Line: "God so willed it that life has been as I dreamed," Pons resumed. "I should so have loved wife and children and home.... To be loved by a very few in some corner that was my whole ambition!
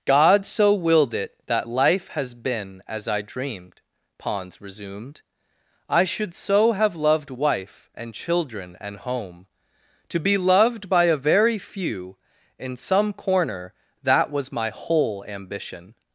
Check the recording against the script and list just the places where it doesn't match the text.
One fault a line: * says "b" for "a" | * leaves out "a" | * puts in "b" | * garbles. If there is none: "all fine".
all fine